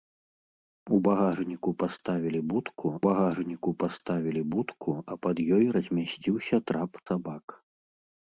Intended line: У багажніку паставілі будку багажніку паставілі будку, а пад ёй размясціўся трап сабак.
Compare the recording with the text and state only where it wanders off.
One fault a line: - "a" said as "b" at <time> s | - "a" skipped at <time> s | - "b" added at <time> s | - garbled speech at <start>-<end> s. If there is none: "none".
none